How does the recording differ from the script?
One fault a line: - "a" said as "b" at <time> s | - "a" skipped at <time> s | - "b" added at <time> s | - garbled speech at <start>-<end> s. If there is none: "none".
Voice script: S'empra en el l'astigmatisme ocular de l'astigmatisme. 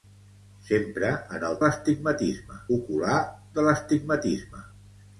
none